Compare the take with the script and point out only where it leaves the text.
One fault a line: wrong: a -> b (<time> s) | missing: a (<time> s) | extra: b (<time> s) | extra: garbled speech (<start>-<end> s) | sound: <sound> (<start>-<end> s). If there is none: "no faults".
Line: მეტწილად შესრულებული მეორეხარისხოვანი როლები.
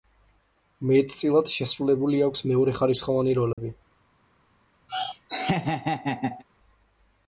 extra: აქვს (2.3 s)
sound: dropout (3.5-3.6 s)
sound: laugh (4.9-6.4 s)